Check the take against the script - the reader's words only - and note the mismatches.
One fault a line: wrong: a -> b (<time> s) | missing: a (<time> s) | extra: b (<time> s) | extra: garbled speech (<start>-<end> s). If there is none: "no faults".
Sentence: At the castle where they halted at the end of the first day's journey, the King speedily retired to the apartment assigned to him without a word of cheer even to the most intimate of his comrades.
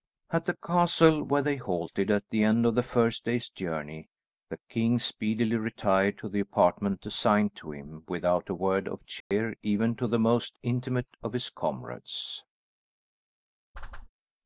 no faults